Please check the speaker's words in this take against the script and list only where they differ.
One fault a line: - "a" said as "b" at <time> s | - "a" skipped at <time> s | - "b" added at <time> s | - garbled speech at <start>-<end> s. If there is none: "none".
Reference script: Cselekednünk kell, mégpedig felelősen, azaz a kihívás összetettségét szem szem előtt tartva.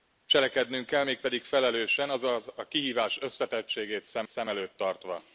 none